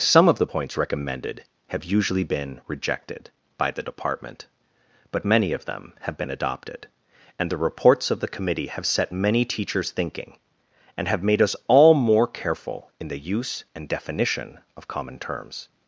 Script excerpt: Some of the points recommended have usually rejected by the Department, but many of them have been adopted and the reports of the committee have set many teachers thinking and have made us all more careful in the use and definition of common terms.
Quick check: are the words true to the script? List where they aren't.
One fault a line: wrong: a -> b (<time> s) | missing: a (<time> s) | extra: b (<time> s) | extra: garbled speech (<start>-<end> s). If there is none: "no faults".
extra: been (2.2 s)